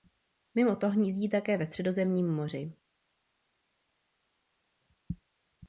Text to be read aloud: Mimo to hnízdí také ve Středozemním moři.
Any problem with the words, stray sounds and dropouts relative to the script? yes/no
no